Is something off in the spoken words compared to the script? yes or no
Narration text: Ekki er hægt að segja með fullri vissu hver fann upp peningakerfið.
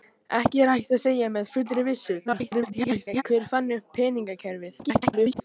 yes